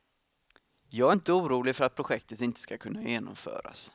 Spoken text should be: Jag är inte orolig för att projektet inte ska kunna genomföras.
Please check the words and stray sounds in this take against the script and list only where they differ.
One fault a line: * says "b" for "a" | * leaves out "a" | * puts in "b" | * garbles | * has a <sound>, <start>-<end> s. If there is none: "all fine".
all fine